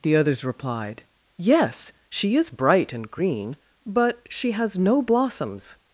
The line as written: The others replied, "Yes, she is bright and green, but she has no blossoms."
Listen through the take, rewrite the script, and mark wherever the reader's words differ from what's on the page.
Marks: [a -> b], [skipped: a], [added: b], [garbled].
The others replied, "Yes, she is bright and green, but she has no blossoms."